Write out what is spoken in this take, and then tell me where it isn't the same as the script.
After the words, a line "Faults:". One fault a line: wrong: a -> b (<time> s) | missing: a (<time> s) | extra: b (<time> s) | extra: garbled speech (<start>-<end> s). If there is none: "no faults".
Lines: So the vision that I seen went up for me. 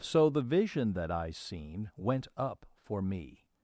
So the vision that I seen went up for me.
Faults:
no faults